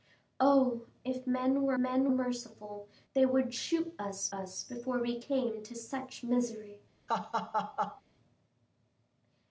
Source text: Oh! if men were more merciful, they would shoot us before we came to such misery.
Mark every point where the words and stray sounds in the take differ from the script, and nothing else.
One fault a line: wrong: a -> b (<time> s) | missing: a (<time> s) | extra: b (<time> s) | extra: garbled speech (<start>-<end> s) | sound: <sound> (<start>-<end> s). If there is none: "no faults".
wrong: more -> men (1.8 s)
extra: us (4.3 s)
sound: laugh (7.1-8.0 s)